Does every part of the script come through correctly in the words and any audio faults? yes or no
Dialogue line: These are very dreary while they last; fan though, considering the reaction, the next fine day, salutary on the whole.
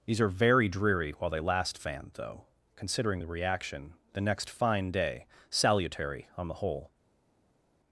yes